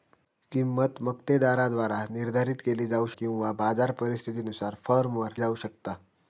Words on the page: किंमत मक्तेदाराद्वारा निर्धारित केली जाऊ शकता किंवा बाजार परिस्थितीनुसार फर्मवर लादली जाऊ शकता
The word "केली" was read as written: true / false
true